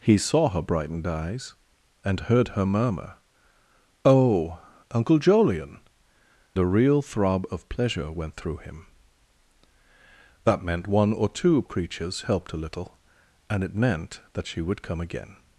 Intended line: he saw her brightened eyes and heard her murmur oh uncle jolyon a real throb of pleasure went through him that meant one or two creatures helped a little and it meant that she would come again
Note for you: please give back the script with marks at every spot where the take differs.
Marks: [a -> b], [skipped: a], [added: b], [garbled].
he saw her brightened eyes and heard her murmur oh uncle jolyon a real throb of pleasure went through him that meant one or two creatures helped a little and it meant that she would come again